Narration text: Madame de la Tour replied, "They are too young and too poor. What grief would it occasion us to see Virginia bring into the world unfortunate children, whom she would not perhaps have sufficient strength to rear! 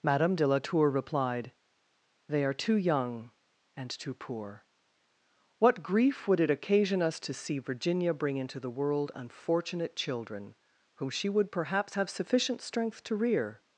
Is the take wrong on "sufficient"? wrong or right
right